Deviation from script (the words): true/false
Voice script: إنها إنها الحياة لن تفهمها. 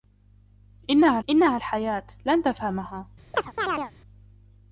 false